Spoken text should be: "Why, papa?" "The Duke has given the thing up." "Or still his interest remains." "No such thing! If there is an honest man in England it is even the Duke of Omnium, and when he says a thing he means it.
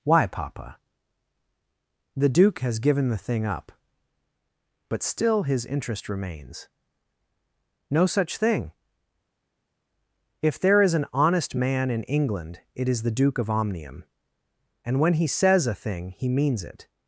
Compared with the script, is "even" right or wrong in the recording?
wrong